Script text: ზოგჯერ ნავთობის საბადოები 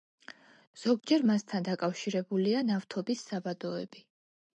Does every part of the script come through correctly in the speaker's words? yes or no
no